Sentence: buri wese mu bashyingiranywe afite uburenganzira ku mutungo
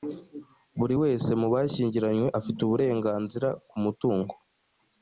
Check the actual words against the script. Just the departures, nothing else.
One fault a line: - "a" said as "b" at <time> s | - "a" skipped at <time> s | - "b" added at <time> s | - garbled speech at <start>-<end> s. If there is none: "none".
none